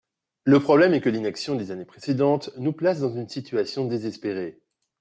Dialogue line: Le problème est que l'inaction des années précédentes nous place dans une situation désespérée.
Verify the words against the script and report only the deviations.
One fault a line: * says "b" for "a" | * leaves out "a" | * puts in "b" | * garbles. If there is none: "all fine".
all fine